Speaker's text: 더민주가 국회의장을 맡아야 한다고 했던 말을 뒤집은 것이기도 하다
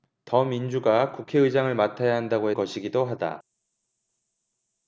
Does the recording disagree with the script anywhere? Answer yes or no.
yes